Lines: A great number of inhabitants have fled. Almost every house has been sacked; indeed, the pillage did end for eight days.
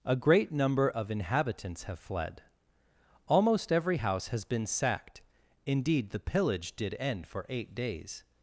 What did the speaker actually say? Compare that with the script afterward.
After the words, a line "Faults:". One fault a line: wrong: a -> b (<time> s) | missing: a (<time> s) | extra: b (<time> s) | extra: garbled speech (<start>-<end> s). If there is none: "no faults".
A great number of inhabitants have fled. Almost every house has been sacked; indeed, the pillage did end for eight days.
Faults:
no faults